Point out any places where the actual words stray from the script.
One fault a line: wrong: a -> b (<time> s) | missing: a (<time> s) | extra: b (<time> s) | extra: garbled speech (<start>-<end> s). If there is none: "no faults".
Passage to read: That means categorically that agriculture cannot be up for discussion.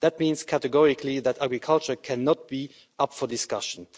no faults